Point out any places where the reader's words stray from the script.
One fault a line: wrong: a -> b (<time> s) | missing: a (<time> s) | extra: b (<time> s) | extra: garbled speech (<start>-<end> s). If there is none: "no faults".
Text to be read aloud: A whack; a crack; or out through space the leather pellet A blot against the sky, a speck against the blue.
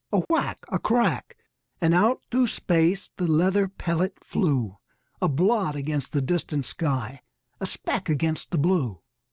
wrong: or -> and (1.8 s)
extra: flew (4.2 s)
extra: distant (6.2 s)